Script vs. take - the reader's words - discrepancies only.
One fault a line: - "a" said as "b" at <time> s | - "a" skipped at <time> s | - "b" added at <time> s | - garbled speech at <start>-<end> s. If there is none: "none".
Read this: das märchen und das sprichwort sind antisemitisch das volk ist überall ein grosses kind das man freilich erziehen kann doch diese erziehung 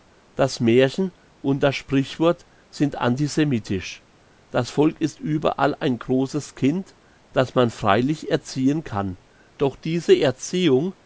none